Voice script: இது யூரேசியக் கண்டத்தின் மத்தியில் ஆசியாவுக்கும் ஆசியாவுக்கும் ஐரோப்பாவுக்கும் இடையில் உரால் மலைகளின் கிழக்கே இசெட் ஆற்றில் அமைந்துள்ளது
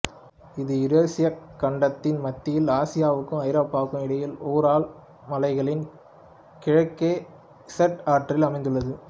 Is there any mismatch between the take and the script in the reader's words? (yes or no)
yes